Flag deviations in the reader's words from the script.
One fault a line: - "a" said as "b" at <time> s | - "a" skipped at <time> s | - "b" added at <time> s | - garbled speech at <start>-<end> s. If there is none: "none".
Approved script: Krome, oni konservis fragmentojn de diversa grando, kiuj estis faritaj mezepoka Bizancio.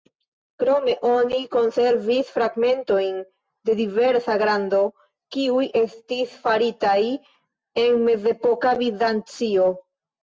- "en" added at 7.9 s